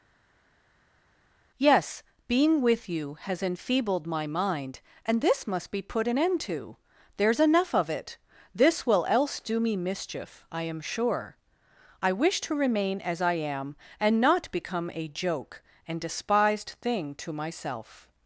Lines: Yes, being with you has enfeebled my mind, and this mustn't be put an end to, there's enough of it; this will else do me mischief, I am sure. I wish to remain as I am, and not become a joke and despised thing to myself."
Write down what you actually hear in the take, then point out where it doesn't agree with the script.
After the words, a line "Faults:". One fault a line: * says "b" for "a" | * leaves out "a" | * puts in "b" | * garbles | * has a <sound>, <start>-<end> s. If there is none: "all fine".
Yes, being with you has enfeebled my mind, and this must be put an end to, there's enough of it; this will else do me mischief, I am sure. I wish to remain as I am, and not become a joke and despised thing to myself."
Faults:
* says "must" for "mustn't"